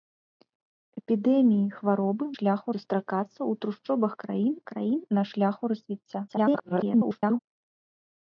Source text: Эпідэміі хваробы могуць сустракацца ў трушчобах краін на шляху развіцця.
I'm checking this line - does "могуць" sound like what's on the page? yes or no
no